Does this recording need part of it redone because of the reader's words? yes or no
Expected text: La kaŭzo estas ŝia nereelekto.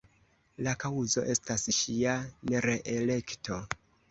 no